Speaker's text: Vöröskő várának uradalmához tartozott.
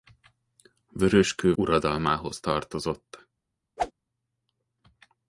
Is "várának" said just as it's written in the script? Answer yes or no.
no